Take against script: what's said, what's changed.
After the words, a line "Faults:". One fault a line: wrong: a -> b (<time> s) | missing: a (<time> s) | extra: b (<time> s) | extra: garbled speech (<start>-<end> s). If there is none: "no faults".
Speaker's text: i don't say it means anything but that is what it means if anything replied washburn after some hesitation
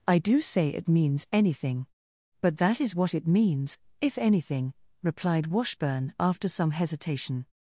i do say it means anything but that is what it means if anything replied washburn after some hesitation
Faults:
wrong: don't -> do (0.2 s)